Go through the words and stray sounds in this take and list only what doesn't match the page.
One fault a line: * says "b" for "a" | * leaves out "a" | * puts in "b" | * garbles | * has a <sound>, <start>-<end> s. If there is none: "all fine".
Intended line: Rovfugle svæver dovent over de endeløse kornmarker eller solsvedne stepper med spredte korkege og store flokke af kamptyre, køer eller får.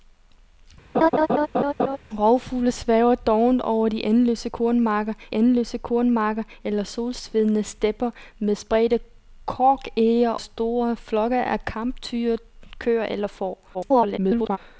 * has a laugh, 0.9-2.0 s
* puts in "endeløse kornmarker"
* leaves out "og"
* garbles